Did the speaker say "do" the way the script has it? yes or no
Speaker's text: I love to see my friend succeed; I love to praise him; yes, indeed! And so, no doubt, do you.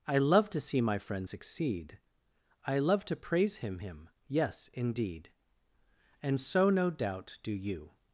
yes